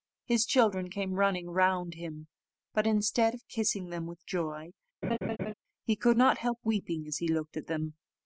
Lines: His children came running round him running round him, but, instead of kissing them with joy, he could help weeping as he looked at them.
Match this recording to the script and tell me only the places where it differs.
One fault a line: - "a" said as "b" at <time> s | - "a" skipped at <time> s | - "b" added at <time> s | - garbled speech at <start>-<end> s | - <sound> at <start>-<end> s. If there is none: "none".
- "running round him" skipped at 2.3 s
- laugh at 5.0-5.5 s
- "not" added at 6.2 s